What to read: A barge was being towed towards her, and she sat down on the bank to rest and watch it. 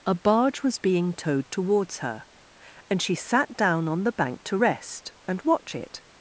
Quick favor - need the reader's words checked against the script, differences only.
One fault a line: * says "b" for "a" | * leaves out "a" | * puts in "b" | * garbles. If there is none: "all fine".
all fine